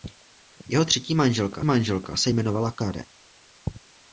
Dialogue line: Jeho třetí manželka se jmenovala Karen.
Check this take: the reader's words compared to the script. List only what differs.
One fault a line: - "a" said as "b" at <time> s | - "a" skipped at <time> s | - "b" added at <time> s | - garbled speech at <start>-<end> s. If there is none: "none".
- "manželka" added at 1.6 s